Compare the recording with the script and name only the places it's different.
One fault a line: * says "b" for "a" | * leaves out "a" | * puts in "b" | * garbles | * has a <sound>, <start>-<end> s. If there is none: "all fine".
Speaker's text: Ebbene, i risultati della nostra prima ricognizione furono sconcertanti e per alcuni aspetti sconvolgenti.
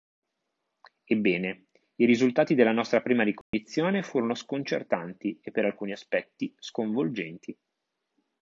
* has a dropout, 3.4-3.5 s